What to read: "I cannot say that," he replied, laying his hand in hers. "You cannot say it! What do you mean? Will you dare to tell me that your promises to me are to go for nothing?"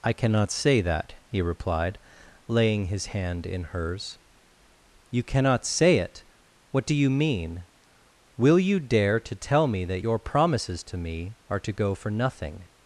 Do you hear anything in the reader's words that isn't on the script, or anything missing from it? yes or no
no